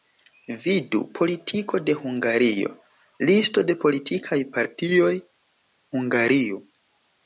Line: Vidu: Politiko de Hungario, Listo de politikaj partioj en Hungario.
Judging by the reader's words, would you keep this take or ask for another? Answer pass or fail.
fail